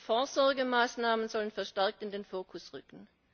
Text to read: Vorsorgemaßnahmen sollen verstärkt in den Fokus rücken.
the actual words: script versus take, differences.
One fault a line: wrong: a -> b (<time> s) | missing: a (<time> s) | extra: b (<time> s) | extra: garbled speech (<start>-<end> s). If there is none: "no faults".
no faults